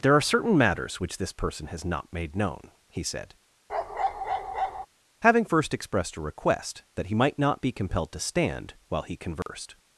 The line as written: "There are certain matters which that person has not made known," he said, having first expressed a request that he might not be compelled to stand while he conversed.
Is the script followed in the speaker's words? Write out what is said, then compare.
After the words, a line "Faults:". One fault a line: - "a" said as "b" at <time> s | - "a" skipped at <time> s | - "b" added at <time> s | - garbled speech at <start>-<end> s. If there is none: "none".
"There are certain matters which this person has not made known," he said, having first expressed a request that he might not be compelled to stand while he conversed.
Faults:
- "that" said as "this" at 1.2 s